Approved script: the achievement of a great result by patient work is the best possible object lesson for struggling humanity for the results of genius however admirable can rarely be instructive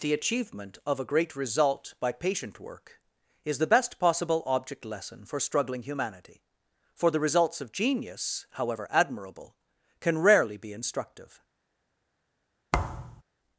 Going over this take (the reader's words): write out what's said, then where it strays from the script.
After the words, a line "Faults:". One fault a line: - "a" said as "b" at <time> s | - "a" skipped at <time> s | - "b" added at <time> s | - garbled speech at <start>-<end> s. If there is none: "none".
the achievement of a great result by patient work is the best possible object lesson for struggling humanity for the results of genius however admirable can rarely be instructive
Faults:
none